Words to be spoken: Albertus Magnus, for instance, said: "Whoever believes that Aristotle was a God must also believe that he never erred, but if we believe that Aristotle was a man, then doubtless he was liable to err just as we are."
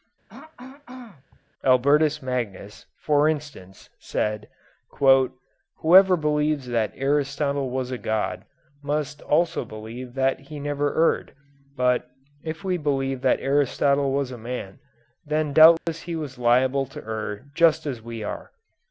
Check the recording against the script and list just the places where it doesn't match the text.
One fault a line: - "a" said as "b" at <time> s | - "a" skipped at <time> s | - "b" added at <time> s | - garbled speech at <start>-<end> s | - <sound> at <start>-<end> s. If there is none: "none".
- throat clearing at 0.3-1.4 s
- dropout at 15.8-15.9 s